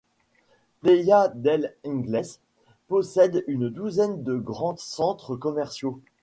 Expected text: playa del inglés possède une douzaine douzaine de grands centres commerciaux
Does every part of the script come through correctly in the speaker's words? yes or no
no